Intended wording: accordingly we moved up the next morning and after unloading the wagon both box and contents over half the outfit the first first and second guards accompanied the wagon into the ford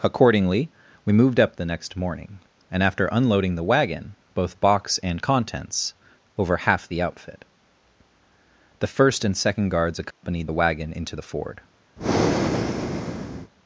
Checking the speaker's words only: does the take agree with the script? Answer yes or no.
no